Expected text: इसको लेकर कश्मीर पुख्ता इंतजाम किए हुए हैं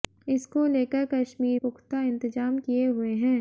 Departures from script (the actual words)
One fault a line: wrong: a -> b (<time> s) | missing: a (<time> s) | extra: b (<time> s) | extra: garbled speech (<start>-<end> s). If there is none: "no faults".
no faults